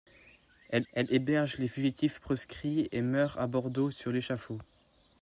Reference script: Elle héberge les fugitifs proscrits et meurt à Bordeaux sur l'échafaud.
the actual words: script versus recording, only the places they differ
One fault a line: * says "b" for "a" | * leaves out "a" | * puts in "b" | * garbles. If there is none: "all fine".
* puts in "elle"